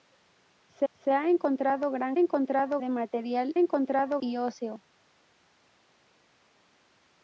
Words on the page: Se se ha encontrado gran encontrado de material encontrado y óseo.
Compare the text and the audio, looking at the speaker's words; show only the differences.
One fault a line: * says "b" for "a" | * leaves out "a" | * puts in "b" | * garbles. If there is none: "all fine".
all fine